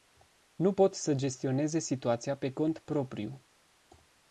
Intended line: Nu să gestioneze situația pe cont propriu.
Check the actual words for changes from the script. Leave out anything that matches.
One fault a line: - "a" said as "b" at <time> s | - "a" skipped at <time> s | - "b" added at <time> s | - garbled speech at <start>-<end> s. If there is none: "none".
- "pot" added at 0.7 s